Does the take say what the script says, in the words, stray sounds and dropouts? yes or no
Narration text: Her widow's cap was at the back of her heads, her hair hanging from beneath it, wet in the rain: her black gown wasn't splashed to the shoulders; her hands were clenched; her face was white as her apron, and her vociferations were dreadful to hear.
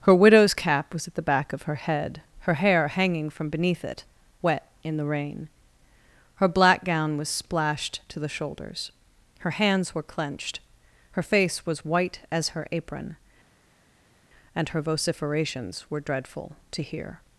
no